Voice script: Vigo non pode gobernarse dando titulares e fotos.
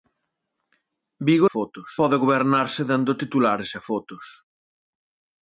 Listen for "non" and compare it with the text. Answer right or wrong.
wrong